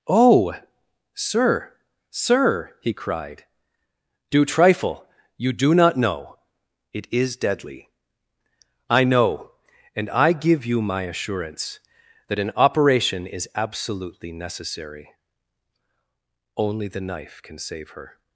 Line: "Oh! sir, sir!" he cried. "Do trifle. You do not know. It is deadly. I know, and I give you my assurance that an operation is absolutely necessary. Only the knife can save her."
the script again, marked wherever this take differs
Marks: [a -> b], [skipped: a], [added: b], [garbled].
"Oh! sir, sir!" he cried. "Do trifle. You do not know. It is deadly. I know, and I give you my assurance that an operation is absolutely necessary. Only the knife can save her."